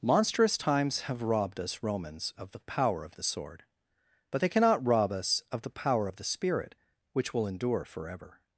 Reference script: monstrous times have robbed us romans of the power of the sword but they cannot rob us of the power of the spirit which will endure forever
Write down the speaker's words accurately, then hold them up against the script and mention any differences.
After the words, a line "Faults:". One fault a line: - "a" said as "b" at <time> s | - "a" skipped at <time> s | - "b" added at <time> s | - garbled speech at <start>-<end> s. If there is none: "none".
monstrous times have robbed us romans of the power of the sword but they cannot rob us of the power of the spirit which will endure forever
Faults:
none